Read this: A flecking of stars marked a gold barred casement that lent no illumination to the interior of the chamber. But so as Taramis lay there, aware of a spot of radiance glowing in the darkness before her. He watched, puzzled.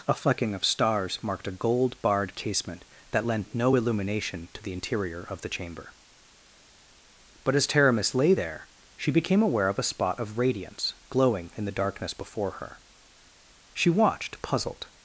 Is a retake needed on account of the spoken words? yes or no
yes